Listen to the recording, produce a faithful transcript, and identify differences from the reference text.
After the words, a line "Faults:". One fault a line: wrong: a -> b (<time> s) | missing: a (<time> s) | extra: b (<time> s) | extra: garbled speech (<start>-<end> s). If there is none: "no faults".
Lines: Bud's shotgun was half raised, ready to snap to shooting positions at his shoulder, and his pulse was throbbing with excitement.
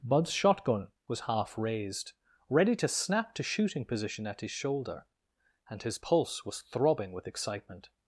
Bud's shotgun was half raised, ready to snap to shooting position at his shoulder, and his pulse was throbbing with excitement.
Faults:
wrong: positions -> position (3.9 s)